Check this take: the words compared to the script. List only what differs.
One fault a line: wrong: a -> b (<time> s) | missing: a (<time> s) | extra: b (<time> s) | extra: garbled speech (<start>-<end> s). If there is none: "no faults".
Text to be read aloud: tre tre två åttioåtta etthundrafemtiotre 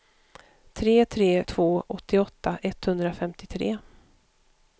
no faults